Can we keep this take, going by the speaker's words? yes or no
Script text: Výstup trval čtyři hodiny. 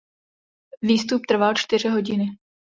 yes